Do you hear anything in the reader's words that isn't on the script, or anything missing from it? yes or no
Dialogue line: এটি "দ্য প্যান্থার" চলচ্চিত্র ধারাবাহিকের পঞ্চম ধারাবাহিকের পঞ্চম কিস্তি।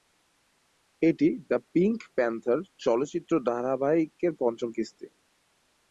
yes